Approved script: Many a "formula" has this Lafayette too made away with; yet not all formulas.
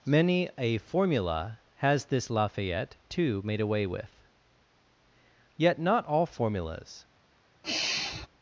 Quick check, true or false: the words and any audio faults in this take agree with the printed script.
false